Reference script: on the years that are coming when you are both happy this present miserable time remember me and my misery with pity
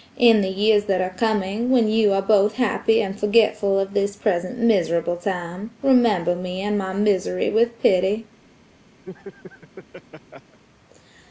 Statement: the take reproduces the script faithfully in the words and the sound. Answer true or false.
false